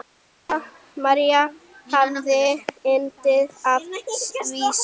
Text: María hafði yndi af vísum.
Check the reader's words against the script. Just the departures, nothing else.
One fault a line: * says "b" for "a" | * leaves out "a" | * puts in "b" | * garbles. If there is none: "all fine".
all fine